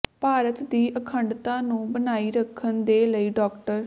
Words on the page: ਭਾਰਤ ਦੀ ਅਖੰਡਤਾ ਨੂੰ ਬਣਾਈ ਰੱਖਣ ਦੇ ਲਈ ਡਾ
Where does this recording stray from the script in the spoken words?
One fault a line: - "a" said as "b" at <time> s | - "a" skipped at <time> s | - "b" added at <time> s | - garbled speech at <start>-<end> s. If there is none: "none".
none